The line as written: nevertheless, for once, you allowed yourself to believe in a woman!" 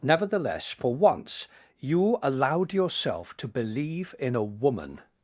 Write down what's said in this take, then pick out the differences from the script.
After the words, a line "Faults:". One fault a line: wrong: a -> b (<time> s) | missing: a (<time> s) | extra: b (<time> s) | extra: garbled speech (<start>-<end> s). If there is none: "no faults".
nevertheless, for once, you allowed yourself to believe in a woman!"
Faults:
no faults